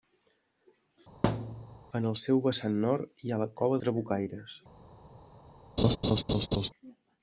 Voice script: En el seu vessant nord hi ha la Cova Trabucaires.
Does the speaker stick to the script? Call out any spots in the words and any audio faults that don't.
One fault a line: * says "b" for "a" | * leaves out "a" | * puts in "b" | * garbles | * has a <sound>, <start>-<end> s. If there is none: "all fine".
* has a thud, 1.2-1.8 s
* has a laugh, 5.8-6.7 s